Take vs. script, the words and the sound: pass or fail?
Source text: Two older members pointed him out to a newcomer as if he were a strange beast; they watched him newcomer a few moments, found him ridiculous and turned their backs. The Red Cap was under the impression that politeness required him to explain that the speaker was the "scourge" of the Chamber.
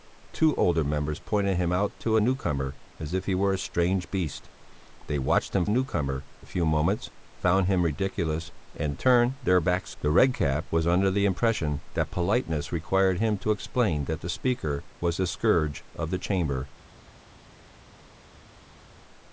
pass